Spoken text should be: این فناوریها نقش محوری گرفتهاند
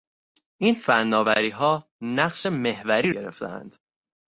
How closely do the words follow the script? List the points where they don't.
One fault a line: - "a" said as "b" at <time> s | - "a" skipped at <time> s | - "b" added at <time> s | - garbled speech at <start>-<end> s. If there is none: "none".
none